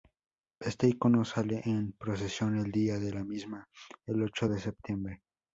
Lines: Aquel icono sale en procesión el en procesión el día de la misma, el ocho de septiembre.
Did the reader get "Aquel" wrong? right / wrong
wrong